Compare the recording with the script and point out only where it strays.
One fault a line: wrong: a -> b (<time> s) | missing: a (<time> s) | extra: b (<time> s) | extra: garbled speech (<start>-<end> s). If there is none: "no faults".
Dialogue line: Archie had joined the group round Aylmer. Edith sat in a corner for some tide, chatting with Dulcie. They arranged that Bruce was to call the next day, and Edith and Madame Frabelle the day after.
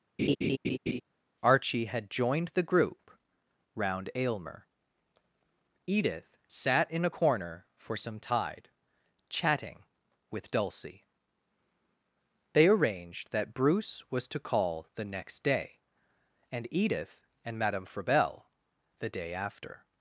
no faults